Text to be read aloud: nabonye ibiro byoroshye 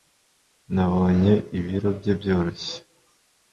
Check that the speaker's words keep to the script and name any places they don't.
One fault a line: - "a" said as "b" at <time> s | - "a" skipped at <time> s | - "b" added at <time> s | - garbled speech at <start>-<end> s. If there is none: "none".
- "bye" added at 2.0 s